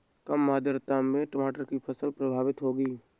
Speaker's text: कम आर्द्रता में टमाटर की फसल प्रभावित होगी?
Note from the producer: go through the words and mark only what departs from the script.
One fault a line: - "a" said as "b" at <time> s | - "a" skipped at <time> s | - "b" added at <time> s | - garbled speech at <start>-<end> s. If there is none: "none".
none